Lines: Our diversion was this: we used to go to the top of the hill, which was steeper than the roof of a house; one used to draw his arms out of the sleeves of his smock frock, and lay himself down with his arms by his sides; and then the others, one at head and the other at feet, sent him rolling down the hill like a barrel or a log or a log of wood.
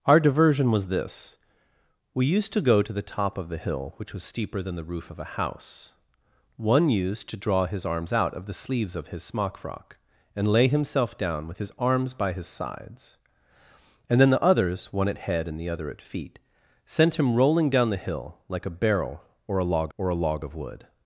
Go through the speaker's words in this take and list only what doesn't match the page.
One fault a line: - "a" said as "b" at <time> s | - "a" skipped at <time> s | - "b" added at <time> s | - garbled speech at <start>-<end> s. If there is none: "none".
none